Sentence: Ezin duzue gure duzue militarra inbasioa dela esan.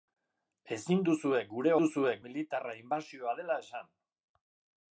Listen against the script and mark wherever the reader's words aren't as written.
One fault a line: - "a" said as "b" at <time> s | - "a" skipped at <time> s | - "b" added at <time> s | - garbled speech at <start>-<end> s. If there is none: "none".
none